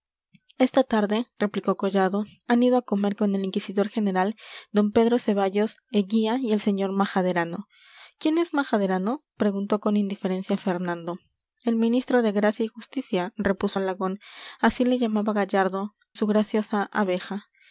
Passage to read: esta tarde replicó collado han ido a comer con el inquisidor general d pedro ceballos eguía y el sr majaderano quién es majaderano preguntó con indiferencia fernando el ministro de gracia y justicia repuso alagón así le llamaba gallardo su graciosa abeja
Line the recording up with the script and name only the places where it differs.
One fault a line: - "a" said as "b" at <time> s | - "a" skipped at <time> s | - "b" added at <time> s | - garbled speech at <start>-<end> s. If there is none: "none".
none